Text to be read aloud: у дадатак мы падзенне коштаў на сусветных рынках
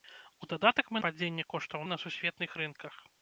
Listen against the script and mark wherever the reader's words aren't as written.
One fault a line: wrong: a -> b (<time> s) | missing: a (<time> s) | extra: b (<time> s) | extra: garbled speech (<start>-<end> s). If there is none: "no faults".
no faults